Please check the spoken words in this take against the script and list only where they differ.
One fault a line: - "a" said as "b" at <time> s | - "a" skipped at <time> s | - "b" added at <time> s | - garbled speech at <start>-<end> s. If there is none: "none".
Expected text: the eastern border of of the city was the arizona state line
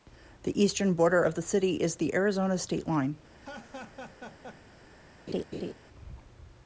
- "of" skipped at 1.3 s
- "was" said as "is" at 1.8 s